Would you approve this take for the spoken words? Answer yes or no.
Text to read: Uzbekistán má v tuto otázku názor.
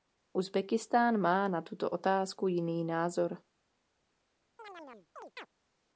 no